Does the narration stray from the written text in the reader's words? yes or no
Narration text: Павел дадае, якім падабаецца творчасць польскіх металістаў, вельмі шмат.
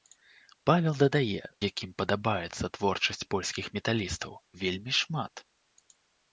no